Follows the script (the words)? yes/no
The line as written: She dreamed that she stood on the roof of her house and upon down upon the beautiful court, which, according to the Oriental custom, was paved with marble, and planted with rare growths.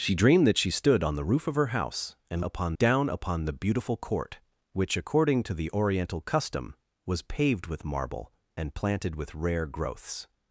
yes